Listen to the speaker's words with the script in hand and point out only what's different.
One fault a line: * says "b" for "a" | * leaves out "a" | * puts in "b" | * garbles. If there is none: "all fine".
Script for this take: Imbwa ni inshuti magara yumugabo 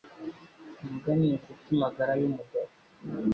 all fine